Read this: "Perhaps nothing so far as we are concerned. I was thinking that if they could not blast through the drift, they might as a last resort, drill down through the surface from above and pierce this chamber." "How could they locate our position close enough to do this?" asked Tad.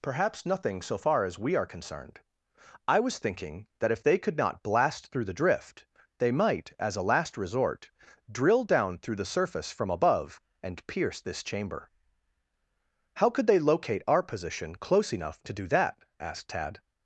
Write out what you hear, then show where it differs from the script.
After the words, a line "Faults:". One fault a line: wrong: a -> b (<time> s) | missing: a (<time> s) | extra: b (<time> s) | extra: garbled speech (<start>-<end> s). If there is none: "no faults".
"Perhaps nothing so far as we are concerned. I was thinking that if they could not blast through the drift, they might as a last resort, drill down through the surface from above and pierce this chamber." "How could they locate our position close enough to do that?" asked Tad.
Faults:
wrong: this -> that (15.7 s)